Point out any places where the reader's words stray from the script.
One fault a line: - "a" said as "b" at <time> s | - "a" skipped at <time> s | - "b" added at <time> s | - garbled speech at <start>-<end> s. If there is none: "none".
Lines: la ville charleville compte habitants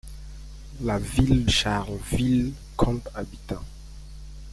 none